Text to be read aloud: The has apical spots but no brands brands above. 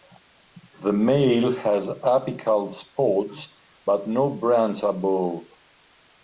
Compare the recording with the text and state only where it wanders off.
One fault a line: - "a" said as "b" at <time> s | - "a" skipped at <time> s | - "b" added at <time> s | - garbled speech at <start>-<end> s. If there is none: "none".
- "male" added at 0.9 s
- "brands" skipped at 4.8 s